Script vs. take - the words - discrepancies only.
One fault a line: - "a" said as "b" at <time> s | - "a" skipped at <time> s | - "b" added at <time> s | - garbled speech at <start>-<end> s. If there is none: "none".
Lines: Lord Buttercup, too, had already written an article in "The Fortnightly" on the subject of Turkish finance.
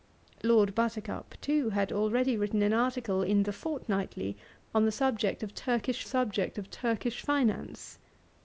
- "subject of Turkish" added at 6.0 s